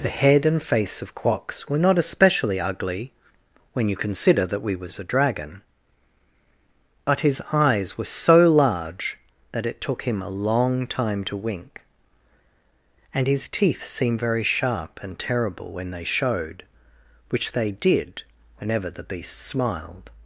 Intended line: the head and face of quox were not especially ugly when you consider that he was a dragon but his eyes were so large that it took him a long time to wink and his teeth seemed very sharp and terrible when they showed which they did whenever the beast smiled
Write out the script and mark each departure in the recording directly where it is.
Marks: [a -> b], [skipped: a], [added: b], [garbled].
the head and face of quox were not especially ugly when you consider that [he -> we] was a dragon but his eyes were so large that it took him a long time to wink and his teeth seemed very sharp and terrible when they showed which they did whenever the beast smiled